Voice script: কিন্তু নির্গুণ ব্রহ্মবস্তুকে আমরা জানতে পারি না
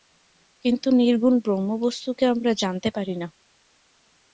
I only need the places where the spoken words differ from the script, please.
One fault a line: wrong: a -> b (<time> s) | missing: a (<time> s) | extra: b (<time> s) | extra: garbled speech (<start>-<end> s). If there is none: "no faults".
no faults